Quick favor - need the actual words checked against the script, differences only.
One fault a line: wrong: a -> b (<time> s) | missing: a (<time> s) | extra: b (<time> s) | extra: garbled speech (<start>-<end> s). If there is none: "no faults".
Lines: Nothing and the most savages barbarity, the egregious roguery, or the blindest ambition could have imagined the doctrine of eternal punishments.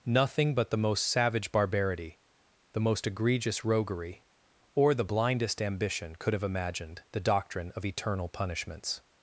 wrong: and -> but (0.6 s)
wrong: savages -> savage (1.1 s)
extra: most (2.8 s)